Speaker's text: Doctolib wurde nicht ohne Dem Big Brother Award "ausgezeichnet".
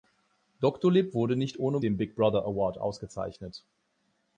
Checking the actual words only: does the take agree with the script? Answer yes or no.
yes